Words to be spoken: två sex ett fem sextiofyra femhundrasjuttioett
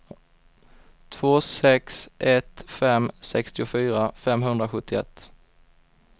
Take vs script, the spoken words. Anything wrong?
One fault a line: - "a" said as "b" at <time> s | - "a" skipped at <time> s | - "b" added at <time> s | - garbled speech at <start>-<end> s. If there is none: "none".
none